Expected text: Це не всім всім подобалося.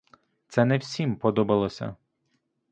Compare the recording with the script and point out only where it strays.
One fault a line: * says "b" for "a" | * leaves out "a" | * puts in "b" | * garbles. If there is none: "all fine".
* leaves out "всім"